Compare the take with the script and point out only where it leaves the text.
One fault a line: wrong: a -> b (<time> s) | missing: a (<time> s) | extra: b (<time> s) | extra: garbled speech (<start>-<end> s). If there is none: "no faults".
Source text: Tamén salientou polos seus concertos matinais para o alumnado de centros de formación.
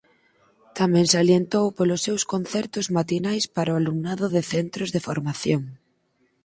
no faults